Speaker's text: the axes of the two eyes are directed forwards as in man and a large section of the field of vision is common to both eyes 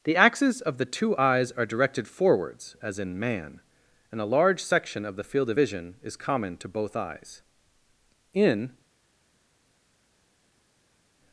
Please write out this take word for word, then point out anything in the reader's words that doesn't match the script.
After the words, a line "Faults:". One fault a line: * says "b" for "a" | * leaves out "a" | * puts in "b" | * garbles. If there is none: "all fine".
the axes of the two eyes are directed forwards as in man and a large section of the field of vision is common to both eyes in
Faults:
* puts in "in"